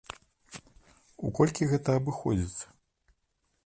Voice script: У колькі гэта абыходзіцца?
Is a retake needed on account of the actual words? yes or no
no